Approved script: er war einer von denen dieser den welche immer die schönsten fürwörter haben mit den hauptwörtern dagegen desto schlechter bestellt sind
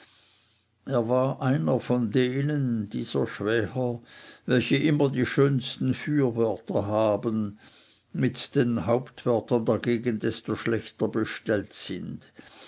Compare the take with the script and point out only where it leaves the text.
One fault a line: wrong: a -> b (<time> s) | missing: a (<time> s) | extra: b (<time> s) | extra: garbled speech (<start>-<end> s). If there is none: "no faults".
wrong: den -> schwäher (3.3 s)